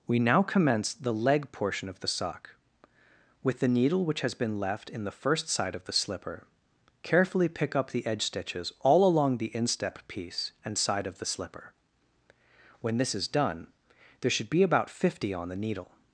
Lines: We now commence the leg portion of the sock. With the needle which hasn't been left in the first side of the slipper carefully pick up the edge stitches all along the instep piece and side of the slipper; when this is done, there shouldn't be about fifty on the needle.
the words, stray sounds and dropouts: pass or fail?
fail